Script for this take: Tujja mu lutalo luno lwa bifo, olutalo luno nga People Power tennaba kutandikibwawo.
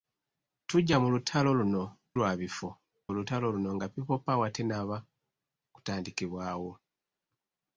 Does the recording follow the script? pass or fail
pass